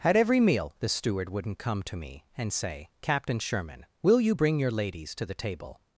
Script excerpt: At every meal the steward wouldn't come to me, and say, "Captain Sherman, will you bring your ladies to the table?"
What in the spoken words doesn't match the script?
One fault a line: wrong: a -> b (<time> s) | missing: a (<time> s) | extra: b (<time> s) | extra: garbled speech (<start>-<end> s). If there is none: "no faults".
no faults